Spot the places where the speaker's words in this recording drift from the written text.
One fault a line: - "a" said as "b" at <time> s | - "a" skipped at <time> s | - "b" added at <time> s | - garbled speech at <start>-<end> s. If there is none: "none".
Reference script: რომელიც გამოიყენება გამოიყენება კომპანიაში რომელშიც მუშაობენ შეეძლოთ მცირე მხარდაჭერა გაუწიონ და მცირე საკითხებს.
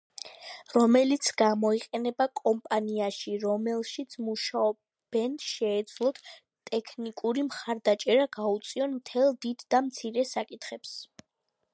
- "გამოიყენება" skipped at 2.2 s
- "მცირე" said as "ტექნიკური" at 6.7 s
- "მთელ დიდ" added at 9.0 s